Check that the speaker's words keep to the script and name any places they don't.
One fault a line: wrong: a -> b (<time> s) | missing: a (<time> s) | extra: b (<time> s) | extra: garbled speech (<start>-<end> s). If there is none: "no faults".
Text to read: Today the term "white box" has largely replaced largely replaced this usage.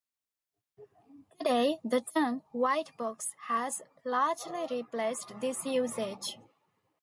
missing: largely replaced (5.4 s)